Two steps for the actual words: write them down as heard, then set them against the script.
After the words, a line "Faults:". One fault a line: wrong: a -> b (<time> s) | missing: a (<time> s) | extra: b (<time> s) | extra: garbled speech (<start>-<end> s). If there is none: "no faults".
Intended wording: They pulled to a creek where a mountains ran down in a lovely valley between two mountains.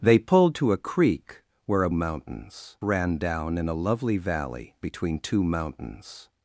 They pulled to a creek where a mountains ran down in a lovely valley between two mountains.
Faults:
no faults